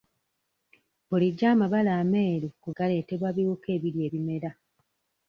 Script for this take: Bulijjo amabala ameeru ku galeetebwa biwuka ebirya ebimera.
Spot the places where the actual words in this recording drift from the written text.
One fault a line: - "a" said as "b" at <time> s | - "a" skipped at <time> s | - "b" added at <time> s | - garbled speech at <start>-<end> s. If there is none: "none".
none